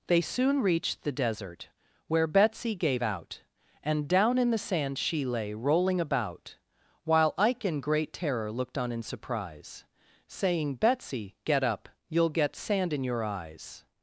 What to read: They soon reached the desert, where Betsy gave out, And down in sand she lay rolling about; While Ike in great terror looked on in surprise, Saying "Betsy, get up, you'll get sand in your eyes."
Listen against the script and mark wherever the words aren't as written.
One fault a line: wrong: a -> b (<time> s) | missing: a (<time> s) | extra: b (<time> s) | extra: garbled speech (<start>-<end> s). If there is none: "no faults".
extra: the (4.5 s)